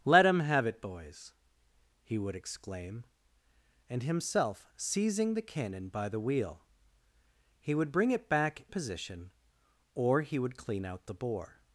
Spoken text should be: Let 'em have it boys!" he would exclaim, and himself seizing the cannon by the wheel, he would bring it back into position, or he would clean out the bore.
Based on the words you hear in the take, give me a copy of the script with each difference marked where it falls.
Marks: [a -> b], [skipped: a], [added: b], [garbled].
Let 'em have it boys!" he would exclaim, and himself seizing the cannon by the wheel, he would bring it back [skipped: into] position, or he would clean out the bore.